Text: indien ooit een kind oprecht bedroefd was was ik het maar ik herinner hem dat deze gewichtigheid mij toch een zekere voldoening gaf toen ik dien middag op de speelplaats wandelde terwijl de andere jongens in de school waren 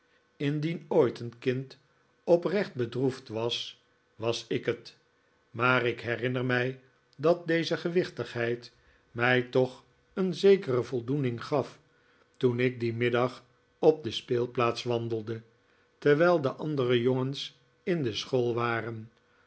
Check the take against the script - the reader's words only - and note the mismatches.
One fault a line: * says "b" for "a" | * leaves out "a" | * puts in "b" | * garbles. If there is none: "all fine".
* says "mij" for "hem"